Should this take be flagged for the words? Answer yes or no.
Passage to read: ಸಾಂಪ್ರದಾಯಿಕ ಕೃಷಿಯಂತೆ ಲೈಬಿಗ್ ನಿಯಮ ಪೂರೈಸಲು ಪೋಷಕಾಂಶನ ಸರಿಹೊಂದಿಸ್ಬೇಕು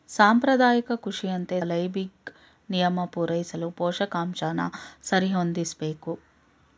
no